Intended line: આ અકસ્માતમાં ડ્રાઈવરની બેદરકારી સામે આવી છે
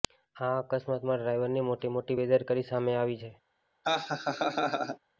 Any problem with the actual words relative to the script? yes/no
yes